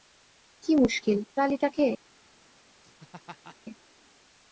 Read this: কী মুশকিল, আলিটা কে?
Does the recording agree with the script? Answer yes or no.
yes